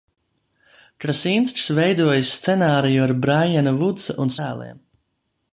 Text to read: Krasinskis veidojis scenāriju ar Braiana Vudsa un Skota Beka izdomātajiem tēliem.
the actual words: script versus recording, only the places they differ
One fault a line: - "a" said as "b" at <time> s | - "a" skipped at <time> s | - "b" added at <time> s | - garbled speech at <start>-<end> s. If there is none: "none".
- "Skota Beka izdomātajiem" skipped at 4.3 s